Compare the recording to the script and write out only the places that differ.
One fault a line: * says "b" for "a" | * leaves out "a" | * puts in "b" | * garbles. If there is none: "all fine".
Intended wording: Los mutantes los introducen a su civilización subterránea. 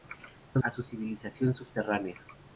* leaves out "mutantes los introducen"